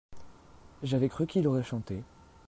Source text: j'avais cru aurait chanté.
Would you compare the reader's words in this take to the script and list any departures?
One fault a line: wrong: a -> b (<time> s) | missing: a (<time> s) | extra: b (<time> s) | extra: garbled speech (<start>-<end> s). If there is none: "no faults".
extra: qu'il (1.3 s)